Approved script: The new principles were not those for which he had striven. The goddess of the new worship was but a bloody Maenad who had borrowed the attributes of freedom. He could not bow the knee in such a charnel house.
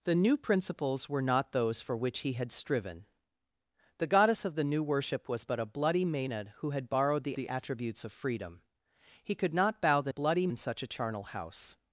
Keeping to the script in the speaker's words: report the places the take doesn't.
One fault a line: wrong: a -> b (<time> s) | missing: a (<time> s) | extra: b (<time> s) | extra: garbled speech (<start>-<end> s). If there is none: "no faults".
extra: the (7.3 s)
wrong: knee -> bloody (10.1 s)